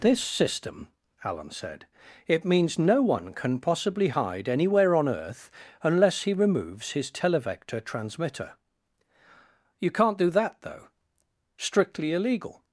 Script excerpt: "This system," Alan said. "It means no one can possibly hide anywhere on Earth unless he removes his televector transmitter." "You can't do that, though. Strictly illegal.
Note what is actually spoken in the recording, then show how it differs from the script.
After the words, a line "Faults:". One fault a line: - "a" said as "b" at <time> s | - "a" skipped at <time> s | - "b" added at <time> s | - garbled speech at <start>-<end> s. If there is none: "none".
"This system," Alan said. "It means no one can possibly hide anywhere on Earth unless he removes his televector transmitter." "You can't do that, though. Strictly illegal.
Faults:
none